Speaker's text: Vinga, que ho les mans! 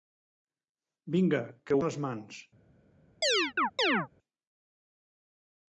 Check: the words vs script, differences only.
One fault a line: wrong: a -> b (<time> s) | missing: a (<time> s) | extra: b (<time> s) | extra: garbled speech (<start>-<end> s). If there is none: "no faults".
no faults